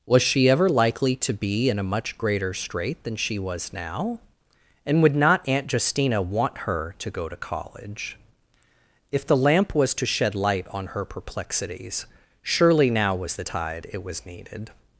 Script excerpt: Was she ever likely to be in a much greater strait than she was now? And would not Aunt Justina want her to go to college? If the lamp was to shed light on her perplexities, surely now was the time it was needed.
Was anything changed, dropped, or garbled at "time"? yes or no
yes